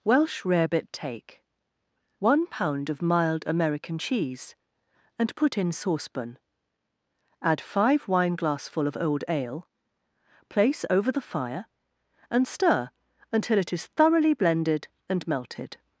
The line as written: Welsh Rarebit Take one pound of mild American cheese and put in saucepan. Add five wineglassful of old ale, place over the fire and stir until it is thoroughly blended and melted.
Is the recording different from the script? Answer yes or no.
no